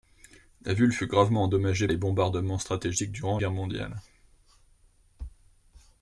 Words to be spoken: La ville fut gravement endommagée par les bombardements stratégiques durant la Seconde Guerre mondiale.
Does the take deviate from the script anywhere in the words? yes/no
yes